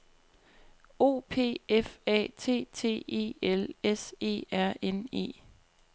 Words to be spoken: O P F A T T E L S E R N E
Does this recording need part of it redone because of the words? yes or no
no